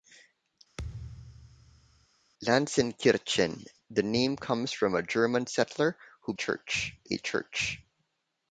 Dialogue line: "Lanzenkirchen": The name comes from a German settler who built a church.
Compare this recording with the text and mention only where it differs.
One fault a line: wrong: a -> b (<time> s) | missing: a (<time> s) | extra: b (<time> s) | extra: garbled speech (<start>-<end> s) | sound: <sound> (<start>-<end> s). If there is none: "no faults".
sound: thud (0.8-2.1 s)
wrong: built -> church (6.3 s)